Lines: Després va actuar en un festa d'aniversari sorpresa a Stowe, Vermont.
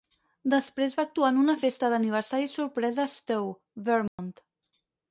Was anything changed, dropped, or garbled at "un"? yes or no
yes